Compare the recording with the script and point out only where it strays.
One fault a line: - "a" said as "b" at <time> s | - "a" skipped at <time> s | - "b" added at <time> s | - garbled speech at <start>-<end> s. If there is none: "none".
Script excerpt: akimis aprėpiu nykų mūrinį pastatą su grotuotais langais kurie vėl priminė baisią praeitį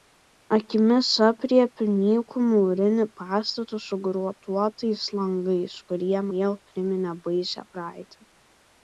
none